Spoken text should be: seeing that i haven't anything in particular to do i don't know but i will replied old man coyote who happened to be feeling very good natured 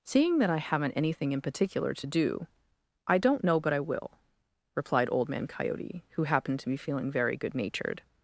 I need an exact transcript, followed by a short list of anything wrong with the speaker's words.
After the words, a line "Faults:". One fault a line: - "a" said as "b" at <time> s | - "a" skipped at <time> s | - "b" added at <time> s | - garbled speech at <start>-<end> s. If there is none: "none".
seeing that i haven't anything in particular to do i don't know but i will replied old man coyote who happened to be feeling very good natured
Faults:
none